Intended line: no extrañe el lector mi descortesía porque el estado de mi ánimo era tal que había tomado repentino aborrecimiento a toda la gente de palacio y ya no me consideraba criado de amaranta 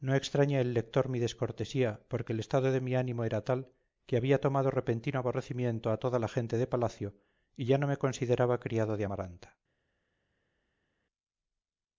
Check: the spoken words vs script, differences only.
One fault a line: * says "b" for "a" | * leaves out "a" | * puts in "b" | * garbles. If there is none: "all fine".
all fine